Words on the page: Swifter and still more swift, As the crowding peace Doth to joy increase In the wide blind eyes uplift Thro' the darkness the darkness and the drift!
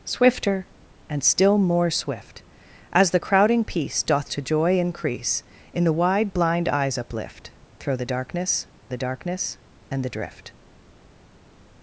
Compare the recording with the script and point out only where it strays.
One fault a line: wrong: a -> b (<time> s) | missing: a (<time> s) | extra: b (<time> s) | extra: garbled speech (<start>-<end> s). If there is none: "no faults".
no faults